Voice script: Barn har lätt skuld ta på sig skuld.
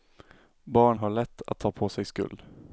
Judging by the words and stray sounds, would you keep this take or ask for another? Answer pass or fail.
fail